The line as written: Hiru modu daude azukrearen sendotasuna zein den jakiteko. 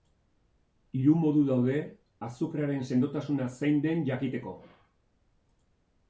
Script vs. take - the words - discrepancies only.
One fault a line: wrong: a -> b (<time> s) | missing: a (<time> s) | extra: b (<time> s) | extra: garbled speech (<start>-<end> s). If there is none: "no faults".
no faults